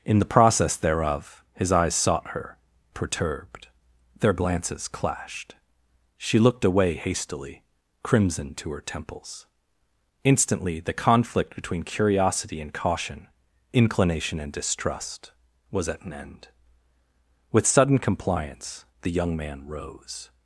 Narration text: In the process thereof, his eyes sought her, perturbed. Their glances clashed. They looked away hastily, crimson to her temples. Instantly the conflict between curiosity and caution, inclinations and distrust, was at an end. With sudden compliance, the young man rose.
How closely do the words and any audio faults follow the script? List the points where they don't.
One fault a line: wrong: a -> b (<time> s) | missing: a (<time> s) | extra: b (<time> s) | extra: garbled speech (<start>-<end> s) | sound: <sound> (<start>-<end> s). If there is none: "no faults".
wrong: They -> She (6.2 s)
wrong: inclinations -> inclination (13.7 s)